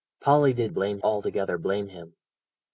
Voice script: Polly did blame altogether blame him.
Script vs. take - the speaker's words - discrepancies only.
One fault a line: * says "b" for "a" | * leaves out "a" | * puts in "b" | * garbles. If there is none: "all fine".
all fine